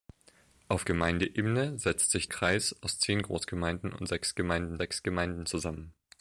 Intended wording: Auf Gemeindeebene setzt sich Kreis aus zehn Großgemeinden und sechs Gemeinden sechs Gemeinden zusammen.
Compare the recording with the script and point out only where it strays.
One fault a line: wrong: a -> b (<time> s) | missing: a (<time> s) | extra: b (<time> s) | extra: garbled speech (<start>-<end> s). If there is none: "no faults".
no faults